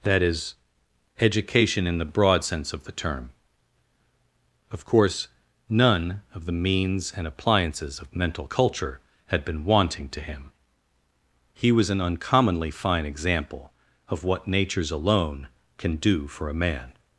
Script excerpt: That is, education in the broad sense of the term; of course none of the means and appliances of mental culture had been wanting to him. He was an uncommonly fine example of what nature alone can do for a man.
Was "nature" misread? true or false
true